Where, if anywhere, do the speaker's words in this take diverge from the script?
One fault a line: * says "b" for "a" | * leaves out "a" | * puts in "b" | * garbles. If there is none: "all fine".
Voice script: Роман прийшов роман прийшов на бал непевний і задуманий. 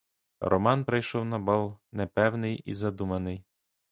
* leaves out "роман прийшов"